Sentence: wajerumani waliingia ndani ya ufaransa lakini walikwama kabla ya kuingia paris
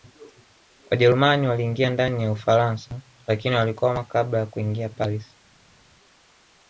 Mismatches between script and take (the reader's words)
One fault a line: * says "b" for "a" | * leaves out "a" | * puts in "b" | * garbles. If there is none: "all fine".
all fine